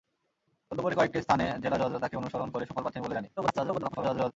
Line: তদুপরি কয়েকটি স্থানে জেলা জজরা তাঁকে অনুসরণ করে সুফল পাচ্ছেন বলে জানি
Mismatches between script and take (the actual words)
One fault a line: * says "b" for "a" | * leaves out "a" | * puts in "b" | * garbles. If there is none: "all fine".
* garbles